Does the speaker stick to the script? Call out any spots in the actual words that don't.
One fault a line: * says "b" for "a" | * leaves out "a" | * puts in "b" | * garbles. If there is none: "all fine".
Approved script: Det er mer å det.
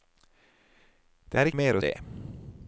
all fine